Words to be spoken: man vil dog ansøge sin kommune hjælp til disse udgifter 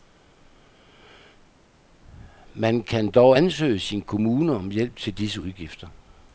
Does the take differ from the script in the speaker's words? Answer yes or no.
yes